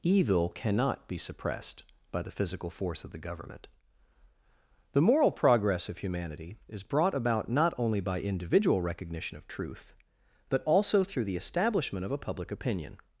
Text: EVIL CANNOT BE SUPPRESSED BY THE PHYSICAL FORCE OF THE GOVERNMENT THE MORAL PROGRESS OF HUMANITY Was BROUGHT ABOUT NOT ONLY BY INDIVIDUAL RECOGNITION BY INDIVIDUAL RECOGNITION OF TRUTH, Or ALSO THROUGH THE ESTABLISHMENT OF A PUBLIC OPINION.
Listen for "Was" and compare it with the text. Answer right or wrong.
wrong